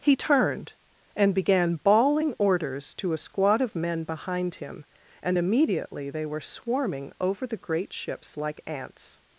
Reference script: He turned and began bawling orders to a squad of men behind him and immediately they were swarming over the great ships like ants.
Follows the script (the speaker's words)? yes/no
yes